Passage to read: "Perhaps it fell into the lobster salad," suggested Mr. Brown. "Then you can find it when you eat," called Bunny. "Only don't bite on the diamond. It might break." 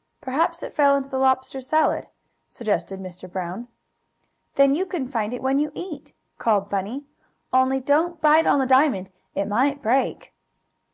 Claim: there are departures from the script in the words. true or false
false